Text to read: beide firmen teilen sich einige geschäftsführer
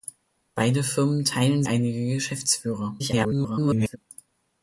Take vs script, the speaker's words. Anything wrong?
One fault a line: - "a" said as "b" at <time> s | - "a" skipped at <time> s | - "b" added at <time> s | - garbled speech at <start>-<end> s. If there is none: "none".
- "sich" skipped at 1.6 s
- garbled speech at 3.0-4.0 s